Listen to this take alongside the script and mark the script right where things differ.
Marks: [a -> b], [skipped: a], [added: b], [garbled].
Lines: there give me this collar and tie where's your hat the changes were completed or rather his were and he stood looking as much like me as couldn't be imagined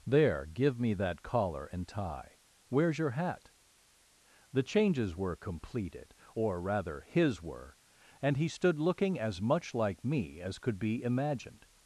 there give me [this -> that] collar and tie where's your hat the changes were completed or rather his were and he stood looking as much like me as [couldn't -> could] be imagined